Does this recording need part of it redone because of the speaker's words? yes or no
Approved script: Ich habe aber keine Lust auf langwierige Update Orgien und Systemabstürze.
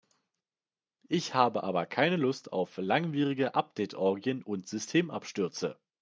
no